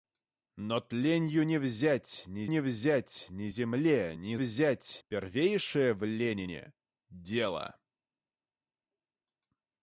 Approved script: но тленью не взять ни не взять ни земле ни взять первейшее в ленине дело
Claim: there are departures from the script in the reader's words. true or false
false